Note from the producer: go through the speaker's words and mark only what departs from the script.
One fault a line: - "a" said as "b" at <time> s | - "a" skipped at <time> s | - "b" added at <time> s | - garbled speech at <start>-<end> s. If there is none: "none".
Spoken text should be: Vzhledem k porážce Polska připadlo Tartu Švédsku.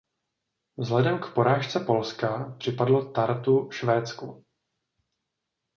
none